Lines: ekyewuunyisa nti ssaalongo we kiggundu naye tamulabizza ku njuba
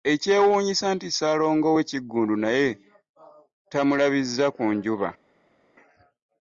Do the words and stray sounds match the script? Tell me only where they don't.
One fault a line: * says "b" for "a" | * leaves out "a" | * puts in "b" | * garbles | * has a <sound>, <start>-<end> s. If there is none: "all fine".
all fine